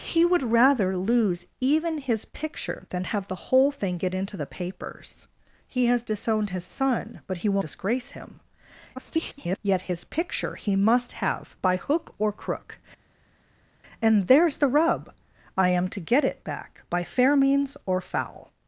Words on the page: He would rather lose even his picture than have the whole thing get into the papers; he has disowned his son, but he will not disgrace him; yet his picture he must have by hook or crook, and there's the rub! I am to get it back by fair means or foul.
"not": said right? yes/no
no